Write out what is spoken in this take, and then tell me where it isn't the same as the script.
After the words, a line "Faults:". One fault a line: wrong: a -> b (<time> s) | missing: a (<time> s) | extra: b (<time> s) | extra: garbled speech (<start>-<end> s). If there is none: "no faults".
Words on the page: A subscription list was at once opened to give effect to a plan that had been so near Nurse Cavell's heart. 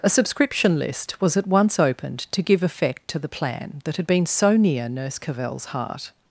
A subscription list was at once opened to give effect to the plan that had been so near Nurse Cavell's heart.
Faults:
wrong: a -> the (3.2 s)